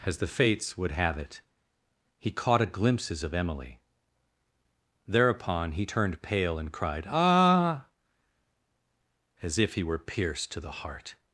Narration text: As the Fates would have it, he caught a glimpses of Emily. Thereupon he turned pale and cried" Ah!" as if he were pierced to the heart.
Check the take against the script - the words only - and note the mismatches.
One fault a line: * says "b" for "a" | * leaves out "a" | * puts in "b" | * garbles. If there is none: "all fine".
all fine